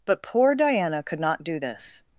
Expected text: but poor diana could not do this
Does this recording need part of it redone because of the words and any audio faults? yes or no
no